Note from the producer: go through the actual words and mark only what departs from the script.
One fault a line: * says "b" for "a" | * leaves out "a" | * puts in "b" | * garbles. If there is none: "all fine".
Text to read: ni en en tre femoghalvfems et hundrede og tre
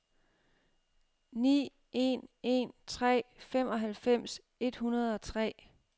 all fine